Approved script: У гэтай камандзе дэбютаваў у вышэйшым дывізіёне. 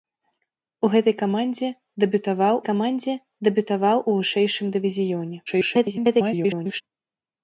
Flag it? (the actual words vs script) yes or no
yes